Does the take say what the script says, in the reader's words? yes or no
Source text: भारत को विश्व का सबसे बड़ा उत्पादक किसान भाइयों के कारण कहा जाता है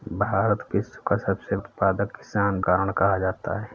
no